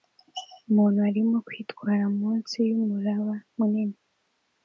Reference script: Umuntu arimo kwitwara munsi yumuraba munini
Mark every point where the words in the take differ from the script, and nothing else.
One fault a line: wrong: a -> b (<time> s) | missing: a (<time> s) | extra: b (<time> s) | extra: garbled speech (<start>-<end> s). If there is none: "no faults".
no faults